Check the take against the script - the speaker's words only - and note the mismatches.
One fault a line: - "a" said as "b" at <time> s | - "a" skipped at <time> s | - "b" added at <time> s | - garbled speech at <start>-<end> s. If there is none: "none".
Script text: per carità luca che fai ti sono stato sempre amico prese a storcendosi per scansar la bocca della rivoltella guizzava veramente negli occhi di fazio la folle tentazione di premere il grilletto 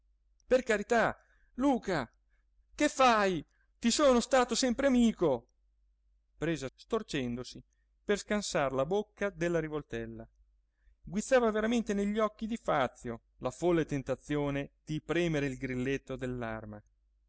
none